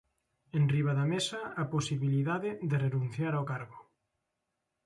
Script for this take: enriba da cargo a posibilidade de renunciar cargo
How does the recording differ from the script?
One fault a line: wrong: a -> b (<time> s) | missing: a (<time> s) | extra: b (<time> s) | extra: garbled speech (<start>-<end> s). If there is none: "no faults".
wrong: cargo -> mesa (1.1 s)
extra: ao (3.4 s)